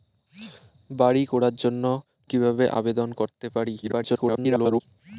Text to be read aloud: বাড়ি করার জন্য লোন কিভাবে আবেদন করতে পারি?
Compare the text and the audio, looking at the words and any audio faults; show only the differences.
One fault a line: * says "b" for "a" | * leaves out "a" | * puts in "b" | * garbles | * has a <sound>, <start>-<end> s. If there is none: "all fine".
* leaves out "লোন"
* garbles